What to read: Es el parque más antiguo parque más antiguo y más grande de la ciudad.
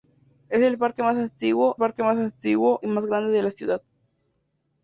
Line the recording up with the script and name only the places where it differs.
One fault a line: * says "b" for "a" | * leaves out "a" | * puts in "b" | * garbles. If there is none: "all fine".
all fine